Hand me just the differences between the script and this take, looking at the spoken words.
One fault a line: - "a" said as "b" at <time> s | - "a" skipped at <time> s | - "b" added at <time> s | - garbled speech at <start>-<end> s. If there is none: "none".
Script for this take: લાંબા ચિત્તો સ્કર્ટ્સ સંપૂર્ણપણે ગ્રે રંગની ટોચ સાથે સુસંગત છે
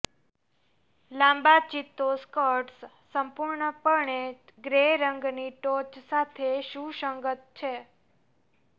none